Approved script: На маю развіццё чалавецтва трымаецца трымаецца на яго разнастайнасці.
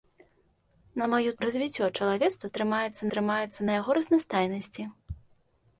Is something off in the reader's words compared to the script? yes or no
no